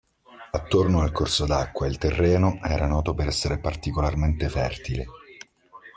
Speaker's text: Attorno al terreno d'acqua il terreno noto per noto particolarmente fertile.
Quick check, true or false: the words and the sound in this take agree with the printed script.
false